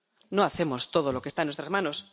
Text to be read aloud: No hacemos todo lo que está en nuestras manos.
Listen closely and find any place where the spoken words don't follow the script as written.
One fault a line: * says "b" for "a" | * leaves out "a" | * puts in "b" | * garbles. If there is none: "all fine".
all fine